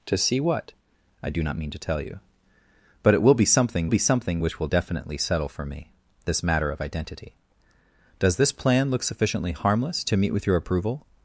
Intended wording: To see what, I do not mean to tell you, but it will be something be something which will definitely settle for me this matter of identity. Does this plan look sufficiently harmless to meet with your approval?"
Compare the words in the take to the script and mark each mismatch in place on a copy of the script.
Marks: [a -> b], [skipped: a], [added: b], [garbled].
To see what, I do not mean to tell you, but it will be something be something which will definitely settle for me this matter of identity. Does this plan look sufficiently harmless to meet with your approval?"